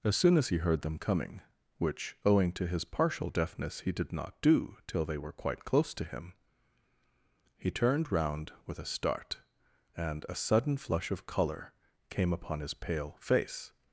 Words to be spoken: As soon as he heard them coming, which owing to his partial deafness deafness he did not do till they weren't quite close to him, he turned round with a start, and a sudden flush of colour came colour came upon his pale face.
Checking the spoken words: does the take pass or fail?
fail